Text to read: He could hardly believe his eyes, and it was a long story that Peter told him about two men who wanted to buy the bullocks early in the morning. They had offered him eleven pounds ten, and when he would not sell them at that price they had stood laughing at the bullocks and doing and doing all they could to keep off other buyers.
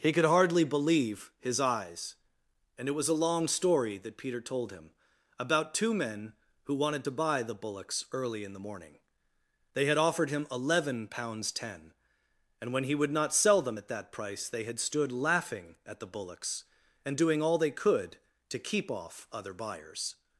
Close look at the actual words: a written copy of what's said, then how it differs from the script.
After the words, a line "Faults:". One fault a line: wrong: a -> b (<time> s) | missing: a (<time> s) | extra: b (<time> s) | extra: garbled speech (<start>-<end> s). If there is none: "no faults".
He could hardly believe his eyes, and it was a long story that Peter told him about two men who wanted to buy the bullocks early in the morning. They had offered him eleven pounds ten, and when he would not sell them at that price they had stood laughing at the bullocks and doing all they could to keep off other buyers.
Faults:
missing: and doing (17.4 s)